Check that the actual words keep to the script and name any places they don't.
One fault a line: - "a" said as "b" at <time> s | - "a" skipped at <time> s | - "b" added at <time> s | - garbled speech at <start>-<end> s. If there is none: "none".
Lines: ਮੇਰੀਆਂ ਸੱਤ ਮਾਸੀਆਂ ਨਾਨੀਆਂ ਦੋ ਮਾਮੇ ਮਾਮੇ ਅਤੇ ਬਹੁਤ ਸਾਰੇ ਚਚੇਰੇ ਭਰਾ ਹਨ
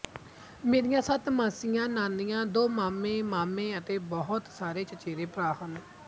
none